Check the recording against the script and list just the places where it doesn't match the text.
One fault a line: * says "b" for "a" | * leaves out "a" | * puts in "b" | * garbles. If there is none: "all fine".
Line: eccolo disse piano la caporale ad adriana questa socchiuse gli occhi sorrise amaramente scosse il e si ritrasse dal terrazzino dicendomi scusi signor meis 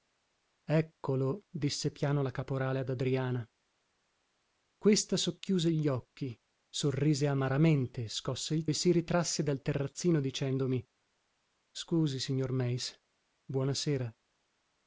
all fine